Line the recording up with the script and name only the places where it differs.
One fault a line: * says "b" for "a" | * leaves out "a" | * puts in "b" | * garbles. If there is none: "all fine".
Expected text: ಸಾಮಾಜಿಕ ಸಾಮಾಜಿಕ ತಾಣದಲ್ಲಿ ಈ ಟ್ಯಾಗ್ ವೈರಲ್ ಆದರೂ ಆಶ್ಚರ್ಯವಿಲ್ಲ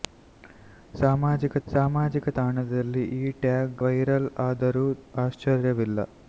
all fine